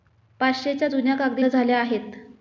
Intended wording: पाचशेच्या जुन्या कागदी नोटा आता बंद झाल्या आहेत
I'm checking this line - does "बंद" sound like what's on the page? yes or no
no